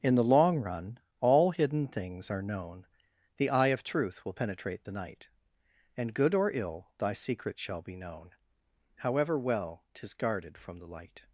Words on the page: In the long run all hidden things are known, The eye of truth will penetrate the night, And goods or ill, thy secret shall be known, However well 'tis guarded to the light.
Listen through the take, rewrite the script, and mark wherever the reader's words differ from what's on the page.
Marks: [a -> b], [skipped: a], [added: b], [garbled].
In the long run all hidden things are known, The eye of truth will penetrate the night, And [goods -> good] or ill, thy secret shall be known, However well 'tis guarded [to -> from] the light.